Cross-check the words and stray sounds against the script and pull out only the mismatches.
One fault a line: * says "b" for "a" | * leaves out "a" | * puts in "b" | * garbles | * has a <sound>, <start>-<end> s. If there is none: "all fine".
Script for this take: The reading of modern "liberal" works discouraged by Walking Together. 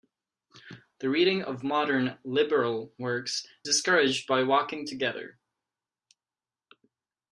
all fine